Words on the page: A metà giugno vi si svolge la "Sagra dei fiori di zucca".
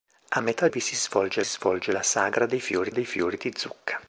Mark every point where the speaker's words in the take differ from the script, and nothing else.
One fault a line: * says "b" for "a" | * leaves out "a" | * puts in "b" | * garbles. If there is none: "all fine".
* leaves out "giugno"
* puts in "svolge"
* puts in "dei fiori"